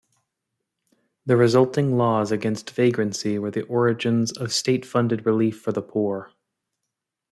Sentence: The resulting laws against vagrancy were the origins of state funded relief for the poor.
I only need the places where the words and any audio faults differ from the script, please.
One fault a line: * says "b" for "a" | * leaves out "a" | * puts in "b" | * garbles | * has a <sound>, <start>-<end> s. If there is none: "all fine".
all fine